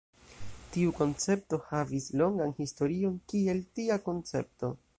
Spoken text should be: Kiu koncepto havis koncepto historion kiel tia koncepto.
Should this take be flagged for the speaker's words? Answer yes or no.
yes